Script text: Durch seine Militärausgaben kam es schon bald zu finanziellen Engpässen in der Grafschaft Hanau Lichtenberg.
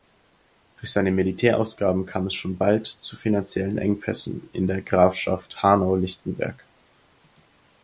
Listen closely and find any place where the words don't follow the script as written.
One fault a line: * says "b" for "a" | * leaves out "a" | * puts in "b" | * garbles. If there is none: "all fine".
all fine